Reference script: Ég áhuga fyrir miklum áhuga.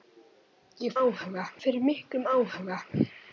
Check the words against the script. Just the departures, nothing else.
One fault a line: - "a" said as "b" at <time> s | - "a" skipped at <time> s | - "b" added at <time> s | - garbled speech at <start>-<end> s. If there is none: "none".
none